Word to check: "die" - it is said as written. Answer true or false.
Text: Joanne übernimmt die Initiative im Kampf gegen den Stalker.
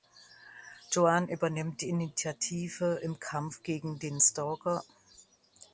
true